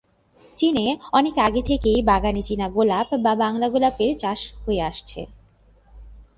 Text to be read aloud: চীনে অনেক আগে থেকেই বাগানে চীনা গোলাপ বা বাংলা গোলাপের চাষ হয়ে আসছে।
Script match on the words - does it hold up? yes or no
yes